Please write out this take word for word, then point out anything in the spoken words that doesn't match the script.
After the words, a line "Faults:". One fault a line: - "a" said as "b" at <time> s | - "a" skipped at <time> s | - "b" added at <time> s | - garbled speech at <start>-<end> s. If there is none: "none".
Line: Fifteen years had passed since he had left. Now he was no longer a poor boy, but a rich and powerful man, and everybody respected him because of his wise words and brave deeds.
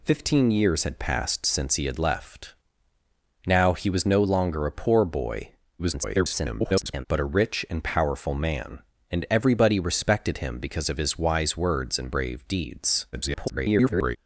Fifteen years had passed since he had left. Now he was no longer a poor boy, [garbled] but a rich and powerful man, and everybody respected him because of his wise words and brave deeds. [garbled]
Faults:
- garbled speech at 5.8-7.1 s
- garbled speech at 13.1-14.2 s